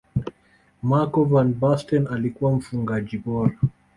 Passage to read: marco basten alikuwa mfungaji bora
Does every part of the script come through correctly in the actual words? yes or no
no